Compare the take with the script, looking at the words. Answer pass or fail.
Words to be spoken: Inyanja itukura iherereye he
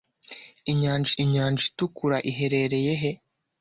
fail